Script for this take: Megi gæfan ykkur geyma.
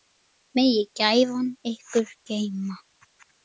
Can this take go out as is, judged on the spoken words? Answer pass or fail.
pass